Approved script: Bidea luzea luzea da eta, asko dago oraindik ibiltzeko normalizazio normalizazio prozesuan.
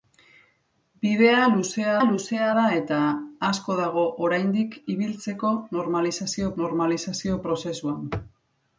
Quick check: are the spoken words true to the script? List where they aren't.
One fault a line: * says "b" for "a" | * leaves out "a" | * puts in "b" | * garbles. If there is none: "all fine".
all fine